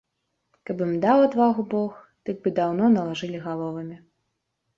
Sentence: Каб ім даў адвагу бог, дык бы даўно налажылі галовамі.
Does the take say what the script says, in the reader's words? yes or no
yes